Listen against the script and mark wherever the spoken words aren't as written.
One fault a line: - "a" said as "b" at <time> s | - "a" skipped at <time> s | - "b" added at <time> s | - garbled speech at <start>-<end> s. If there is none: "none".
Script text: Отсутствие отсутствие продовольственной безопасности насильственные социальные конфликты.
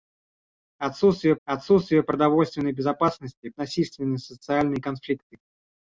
none